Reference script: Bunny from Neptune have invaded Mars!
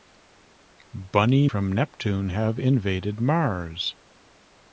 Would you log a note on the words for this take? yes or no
no